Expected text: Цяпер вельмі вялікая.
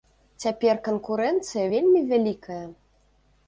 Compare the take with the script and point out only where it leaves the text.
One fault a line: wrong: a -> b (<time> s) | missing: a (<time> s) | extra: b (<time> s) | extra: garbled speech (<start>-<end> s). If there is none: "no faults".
extra: канкурэнцыя (0.9 s)